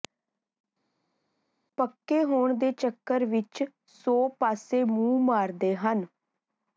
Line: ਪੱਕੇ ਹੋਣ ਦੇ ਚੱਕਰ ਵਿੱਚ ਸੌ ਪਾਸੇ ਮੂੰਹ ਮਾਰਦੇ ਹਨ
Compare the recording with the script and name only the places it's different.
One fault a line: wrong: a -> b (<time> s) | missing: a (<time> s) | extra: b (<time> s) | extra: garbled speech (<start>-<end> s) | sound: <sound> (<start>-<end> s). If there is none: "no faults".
no faults